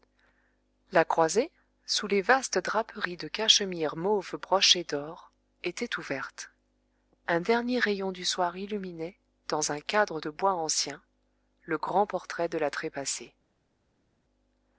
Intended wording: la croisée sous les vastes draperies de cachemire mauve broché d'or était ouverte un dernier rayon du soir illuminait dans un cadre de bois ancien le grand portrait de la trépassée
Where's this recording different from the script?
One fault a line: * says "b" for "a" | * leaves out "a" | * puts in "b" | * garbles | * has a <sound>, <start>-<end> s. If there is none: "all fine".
all fine